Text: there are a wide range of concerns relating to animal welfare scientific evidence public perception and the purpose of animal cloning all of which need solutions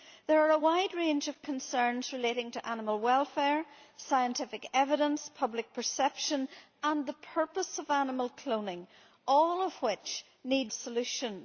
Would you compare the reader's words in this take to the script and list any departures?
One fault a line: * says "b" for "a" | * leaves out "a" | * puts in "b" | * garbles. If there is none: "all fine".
all fine